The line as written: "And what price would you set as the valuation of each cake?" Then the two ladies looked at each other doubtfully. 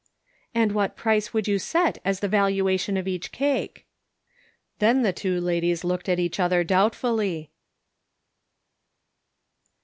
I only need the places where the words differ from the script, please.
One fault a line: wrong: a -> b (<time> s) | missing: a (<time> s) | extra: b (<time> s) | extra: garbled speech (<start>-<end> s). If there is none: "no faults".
no faults